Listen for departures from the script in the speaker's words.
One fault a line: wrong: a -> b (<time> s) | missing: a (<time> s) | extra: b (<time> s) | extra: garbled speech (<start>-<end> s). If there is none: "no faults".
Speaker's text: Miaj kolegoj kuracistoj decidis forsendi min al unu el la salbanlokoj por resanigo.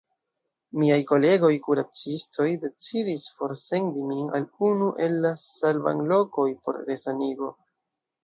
no faults